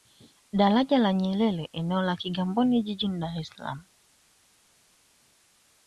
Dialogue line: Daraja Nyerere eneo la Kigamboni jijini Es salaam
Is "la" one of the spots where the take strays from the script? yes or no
no